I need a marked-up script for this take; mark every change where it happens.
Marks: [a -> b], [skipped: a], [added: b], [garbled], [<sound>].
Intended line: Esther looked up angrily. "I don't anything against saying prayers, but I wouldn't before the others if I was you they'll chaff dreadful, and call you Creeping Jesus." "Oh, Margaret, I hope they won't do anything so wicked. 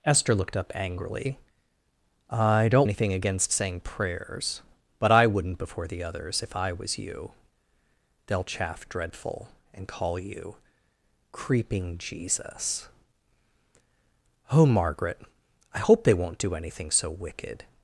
Esther looked up angrily. "I don't anything against saying prayers, but I wouldn't before the others if I was you they'll chaff dreadful, and call you Creeping Jesus." "Oh, Margaret, I hope they won't do anything so wicked.